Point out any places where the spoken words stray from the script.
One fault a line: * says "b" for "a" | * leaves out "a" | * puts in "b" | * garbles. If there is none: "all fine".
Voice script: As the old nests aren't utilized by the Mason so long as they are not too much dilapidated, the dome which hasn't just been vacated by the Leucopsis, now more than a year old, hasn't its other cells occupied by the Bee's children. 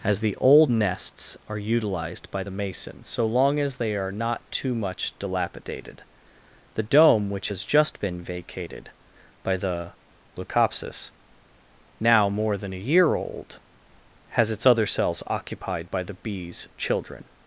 * says "are" for "aren't"
* says "has" for "hasn't"
* says "has" for "hasn't"